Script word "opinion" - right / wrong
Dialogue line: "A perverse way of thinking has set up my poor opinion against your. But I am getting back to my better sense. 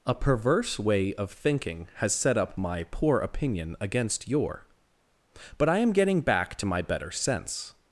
right